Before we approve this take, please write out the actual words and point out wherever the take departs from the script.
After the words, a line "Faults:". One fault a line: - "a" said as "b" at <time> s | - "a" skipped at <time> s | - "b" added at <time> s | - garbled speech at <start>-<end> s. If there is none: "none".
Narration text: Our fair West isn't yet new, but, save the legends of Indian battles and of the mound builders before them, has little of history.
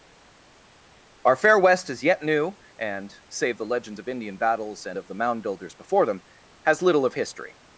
Our fair West is yet new, and, save the legends of Indian battles and of the mound builders before them, has little of history.
Faults:
- "isn't" said as "is" at 1.9 s
- "but" said as "and" at 2.8 s